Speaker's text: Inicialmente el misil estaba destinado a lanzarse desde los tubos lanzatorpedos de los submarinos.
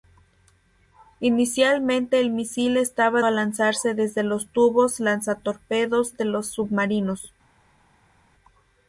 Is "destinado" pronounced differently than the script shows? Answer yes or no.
yes